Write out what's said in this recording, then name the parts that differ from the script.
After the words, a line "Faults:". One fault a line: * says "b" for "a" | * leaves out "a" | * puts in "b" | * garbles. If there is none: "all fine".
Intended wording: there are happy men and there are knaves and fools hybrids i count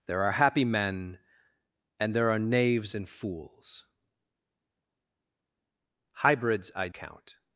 there are happy men and there are knaves and fools hybrids i count
Faults:
all fine